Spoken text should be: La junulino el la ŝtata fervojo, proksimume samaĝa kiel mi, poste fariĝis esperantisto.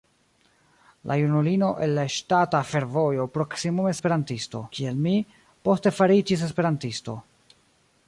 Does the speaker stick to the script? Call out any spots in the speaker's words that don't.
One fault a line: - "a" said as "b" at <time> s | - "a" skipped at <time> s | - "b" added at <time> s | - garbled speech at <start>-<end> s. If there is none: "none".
- "samaĝa" said as "esperantisto" at 4.0 s